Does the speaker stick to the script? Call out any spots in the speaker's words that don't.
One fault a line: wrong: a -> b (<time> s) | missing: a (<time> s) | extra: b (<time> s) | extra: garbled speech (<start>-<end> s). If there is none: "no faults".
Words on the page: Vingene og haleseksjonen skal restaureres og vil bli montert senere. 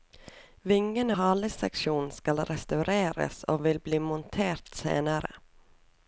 missing: og (1.2 s)